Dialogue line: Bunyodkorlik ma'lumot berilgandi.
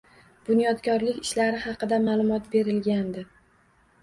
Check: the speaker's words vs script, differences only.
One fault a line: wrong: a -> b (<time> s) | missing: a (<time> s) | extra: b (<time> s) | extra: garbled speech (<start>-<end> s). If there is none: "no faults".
extra: ishlari haqida (1.3 s)